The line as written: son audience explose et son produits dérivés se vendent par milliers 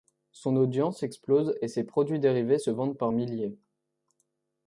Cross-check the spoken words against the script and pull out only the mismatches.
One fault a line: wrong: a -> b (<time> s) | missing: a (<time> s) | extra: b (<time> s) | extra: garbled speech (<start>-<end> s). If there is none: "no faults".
wrong: son -> ses (1.7 s)